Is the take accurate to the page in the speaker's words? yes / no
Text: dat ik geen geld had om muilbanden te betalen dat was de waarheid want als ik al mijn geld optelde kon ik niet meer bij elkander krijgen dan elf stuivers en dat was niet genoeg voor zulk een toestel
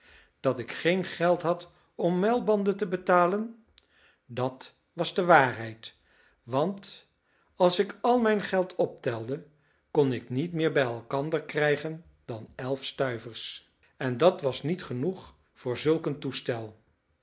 yes